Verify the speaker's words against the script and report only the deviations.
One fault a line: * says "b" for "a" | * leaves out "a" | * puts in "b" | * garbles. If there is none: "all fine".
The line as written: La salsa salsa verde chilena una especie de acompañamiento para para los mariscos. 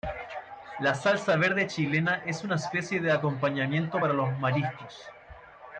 * leaves out "salsa"
* puts in "es"
* leaves out "para"